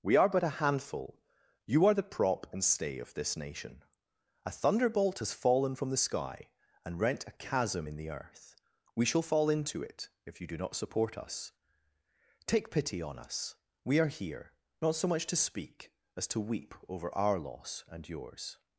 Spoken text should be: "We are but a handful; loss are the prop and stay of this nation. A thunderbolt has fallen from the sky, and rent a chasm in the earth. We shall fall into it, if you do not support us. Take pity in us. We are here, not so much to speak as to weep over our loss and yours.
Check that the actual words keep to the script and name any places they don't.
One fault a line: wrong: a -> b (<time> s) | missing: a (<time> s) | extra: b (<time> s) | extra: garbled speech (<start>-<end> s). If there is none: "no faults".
wrong: loss -> you (1.7 s)
wrong: in -> on (13.0 s)